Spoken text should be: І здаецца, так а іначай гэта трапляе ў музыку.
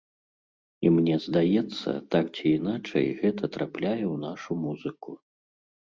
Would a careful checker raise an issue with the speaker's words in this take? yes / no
yes